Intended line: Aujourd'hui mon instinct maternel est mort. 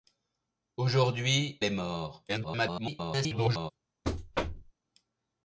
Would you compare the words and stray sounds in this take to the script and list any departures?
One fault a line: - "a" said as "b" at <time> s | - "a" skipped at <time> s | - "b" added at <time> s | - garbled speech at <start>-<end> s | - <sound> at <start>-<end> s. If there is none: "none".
- "mon instinct maternel" skipped at 1.6 s
- garbled speech at 2.3-3.7 s
- thud at 4.0-4.7 s